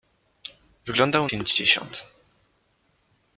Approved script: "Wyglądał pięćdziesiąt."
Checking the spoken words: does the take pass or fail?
pass